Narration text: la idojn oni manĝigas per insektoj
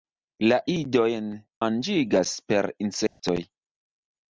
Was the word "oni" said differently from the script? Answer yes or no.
yes